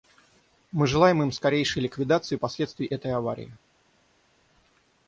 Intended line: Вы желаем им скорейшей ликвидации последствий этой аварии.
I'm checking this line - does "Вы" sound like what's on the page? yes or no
no